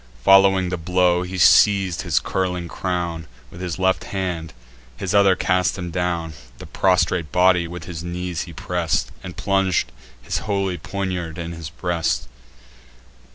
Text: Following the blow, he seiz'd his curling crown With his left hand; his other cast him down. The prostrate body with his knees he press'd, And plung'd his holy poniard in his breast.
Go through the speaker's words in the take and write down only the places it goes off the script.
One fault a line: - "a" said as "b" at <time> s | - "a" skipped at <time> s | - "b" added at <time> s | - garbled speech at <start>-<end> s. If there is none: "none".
none